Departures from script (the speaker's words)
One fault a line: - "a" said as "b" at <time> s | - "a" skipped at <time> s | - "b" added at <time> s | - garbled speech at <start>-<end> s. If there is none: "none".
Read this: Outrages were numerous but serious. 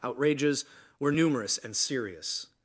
- "but" said as "and" at 1.6 s